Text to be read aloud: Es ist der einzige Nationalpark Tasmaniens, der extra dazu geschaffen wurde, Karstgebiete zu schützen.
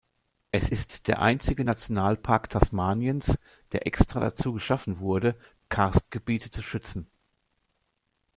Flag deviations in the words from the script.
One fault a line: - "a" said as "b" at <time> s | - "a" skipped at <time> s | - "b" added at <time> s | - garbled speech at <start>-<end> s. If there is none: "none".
none